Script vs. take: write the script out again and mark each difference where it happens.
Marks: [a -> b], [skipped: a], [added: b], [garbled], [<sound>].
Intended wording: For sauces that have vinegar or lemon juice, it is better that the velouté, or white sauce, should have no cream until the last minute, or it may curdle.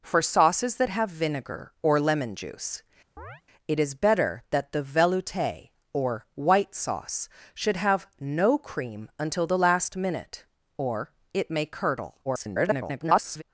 For sauces that have vinegar or lemon juice, [chirp] it is better that the velouté, or white sauce, should have no cream until the last minute, or it may curdle. [garbled]